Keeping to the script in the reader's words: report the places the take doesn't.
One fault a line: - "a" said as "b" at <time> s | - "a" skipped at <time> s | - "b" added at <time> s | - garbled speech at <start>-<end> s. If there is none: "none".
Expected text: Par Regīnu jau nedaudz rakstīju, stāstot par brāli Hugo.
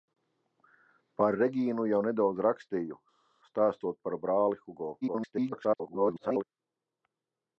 - garbled speech at 5.0-6.4 s